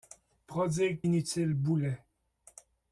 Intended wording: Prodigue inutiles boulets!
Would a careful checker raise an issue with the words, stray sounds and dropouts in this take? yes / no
no